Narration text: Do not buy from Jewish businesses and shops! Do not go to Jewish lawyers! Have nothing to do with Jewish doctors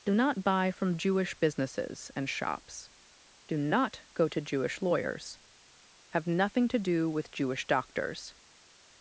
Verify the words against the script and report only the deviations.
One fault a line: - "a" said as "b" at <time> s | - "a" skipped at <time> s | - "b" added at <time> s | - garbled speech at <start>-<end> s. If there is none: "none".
none